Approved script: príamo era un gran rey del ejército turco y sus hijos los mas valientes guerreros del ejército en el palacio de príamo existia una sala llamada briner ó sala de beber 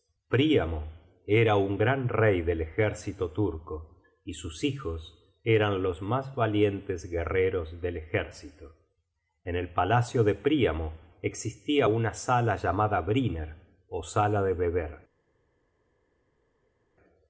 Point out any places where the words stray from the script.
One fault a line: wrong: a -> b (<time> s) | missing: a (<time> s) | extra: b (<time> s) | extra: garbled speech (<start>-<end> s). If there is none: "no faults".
extra: eran (5.4 s)